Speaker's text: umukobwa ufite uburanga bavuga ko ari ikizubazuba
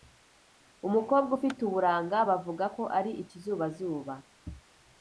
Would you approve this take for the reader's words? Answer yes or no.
yes